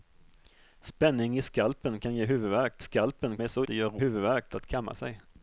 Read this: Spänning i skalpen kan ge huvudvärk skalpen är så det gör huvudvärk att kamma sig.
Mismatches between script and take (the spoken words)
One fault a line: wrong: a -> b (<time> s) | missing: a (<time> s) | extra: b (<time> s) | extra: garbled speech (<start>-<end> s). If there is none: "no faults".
no faults